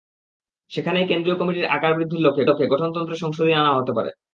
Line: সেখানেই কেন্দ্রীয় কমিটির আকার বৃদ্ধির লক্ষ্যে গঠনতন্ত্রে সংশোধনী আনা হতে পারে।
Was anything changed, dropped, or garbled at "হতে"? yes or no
no